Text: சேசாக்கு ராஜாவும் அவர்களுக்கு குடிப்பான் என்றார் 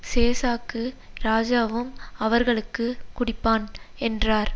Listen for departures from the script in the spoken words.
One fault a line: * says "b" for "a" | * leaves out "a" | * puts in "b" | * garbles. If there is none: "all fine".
all fine